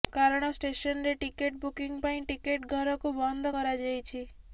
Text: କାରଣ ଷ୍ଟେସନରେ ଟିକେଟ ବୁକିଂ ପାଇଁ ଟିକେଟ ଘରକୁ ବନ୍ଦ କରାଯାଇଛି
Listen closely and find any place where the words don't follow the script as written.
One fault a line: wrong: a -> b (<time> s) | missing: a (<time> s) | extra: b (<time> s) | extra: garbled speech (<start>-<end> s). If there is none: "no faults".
no faults